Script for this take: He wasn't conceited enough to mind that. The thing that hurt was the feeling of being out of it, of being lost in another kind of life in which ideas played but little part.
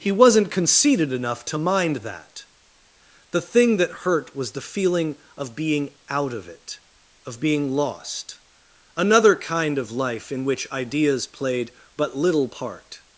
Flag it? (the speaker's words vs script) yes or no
yes